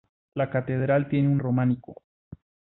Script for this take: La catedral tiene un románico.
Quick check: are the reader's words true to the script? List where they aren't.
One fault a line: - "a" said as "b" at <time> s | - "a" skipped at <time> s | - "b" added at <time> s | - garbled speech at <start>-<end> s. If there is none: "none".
none